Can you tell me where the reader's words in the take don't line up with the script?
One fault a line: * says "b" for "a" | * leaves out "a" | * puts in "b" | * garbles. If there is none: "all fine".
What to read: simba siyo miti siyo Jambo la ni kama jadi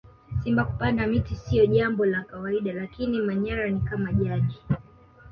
* says "kupanda" for "siyo"
* puts in "kawaida lakini manyara"